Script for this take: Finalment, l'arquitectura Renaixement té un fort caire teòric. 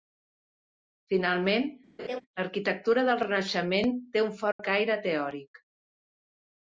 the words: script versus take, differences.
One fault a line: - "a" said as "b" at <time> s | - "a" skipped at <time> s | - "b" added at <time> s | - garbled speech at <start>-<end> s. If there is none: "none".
- "del" added at 3.1 s